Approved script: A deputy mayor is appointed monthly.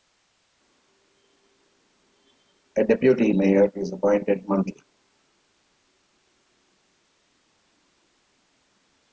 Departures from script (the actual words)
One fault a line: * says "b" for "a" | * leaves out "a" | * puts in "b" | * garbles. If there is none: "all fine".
all fine